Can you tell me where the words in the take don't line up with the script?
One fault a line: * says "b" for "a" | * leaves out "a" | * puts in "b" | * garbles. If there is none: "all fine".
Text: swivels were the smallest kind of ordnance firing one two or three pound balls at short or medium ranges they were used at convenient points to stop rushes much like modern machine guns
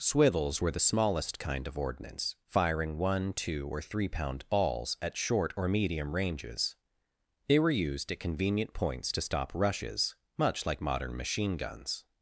all fine